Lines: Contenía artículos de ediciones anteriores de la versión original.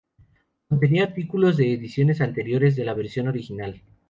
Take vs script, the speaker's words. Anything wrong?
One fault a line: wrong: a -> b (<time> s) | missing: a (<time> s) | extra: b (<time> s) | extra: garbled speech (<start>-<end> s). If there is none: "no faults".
no faults